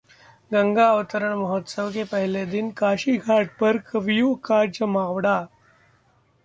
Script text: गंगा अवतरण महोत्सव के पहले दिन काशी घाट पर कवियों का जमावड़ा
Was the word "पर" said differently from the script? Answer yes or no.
no